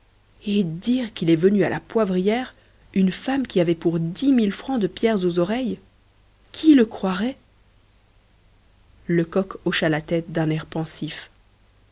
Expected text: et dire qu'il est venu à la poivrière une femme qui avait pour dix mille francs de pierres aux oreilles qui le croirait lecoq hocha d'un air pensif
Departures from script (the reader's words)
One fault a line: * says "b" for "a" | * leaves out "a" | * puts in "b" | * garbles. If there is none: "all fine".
* puts in "la tête"